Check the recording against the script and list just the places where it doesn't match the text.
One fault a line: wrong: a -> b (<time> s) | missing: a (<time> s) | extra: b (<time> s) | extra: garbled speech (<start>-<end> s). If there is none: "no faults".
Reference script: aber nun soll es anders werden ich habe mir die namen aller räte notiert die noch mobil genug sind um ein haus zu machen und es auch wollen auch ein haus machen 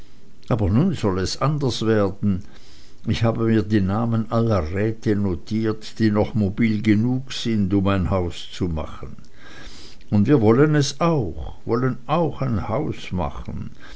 extra: wir wollen (10.3 s)